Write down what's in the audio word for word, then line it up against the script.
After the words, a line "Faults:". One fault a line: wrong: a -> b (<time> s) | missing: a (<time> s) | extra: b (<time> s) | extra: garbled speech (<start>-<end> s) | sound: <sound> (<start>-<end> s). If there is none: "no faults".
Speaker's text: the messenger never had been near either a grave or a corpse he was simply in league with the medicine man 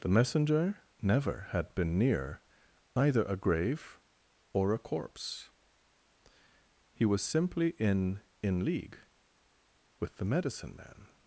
the messenger never had been near either a grave or a corpse he was simply in in league with the medicine man
Faults:
extra: in (8.4 s)